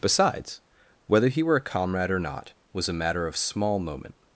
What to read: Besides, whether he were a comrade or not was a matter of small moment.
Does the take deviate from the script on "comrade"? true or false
false